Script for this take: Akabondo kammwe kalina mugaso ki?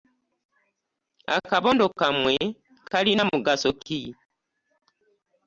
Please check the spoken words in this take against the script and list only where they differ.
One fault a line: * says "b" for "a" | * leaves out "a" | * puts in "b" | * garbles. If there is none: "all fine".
all fine